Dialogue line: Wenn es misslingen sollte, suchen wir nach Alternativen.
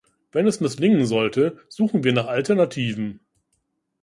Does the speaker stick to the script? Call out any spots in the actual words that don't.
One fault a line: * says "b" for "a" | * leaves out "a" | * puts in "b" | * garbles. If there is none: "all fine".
all fine